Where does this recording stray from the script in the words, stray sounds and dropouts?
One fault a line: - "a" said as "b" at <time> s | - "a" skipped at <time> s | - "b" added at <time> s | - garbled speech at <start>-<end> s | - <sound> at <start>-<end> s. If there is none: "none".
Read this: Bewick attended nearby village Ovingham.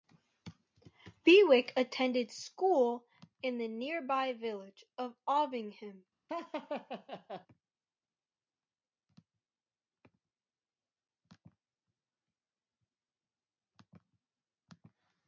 - "school in the" added at 2.3 s
- "of" added at 5.0 s
- laugh at 6.3-7.5 s